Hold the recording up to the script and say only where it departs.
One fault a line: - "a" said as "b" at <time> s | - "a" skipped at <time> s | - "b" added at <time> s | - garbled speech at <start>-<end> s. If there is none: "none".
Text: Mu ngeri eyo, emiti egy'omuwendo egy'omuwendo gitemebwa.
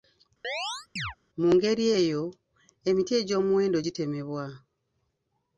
- "egy'omuwendo" skipped at 3.8 s